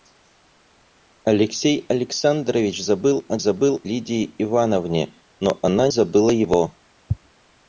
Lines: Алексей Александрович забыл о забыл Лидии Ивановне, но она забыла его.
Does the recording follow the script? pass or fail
pass